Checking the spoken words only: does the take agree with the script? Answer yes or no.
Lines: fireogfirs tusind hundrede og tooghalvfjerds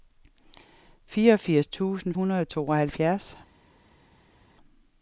yes